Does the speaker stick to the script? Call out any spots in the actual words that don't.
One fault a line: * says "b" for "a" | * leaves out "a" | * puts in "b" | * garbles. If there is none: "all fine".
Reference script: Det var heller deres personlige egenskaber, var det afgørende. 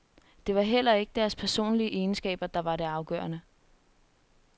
* puts in "ikke"
* puts in "der"